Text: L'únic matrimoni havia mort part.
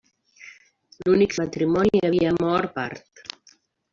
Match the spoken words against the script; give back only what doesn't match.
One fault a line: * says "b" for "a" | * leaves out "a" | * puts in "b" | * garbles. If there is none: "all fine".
all fine